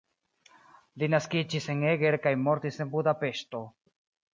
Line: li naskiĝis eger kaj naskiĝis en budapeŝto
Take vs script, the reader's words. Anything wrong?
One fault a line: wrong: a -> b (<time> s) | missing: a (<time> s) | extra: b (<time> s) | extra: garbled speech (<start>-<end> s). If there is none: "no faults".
extra: en (1.8 s)
wrong: naskiĝis -> mortis (2.5 s)